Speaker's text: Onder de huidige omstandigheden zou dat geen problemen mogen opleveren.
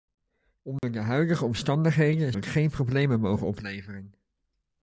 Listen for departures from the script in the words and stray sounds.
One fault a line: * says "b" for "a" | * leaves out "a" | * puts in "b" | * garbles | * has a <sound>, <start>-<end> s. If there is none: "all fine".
* has a dropout, 0.8-0.8 s
* leaves out "zou"